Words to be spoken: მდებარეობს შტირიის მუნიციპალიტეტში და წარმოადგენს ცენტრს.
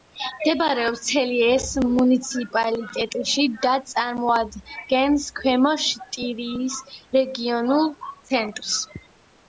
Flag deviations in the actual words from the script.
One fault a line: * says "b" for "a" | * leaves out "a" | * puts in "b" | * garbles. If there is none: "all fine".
* says "ცელიეს" for "შტირიის"
* puts in "ქვემო შტირიის რეგიონულ"